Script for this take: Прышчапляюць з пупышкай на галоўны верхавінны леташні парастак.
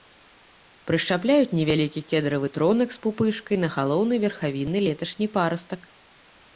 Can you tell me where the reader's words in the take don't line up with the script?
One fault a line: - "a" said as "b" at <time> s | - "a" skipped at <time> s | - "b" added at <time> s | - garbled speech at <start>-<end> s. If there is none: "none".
- "невялікі кедравы тронак" added at 1.6 s